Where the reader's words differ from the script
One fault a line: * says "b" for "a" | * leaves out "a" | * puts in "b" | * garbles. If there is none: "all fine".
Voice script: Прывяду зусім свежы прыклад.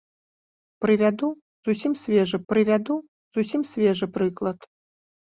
* puts in "прывяду зусім свежы"